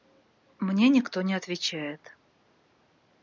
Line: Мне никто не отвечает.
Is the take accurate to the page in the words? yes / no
yes